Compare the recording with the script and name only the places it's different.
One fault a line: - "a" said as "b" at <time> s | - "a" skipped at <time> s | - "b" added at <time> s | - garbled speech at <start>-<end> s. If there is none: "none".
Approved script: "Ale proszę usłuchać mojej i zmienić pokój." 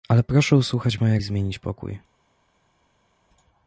none